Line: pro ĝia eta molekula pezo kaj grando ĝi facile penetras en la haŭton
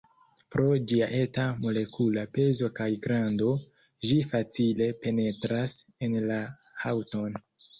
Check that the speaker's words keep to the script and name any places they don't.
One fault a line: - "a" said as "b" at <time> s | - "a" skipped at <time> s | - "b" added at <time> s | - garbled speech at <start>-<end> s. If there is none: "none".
none